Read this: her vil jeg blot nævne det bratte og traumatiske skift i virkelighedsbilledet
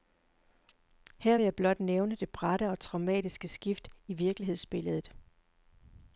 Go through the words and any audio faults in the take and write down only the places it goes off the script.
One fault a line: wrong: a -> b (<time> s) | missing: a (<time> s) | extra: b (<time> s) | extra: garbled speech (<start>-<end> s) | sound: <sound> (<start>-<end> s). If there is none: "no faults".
no faults